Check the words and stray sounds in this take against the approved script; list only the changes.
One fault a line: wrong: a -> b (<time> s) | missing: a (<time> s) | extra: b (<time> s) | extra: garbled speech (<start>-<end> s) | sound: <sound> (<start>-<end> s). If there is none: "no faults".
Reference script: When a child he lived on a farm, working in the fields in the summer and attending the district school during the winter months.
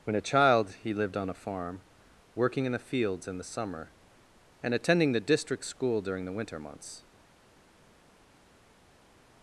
no faults